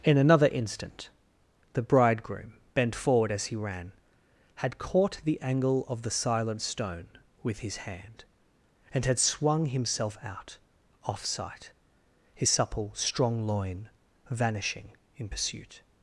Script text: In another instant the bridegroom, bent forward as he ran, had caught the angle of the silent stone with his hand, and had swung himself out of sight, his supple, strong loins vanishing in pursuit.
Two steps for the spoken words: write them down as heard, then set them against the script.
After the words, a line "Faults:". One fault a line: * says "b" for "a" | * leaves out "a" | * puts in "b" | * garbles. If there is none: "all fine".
In another instant the bridegroom, bent forward as he ran, had caught the angle of the silent stone with his hand, and had swung himself out off sight, his supple, strong loin vanishing in pursuit.
Faults:
* says "off" for "of"
* says "loin" for "loins"